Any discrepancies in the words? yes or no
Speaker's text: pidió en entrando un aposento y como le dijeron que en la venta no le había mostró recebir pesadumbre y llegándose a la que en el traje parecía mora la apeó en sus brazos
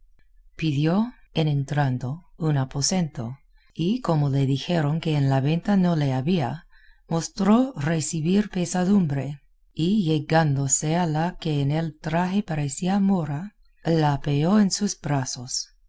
no